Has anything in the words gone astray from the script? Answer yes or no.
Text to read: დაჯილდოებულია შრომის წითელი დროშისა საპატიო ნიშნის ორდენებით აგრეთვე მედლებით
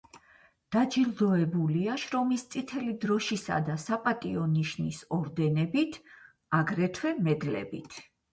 yes